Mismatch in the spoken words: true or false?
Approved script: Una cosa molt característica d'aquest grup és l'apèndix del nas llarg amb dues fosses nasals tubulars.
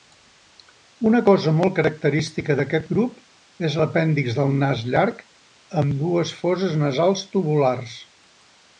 false